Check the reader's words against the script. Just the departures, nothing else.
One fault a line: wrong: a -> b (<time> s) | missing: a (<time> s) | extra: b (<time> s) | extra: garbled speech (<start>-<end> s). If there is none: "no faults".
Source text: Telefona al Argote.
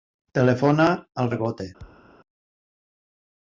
no faults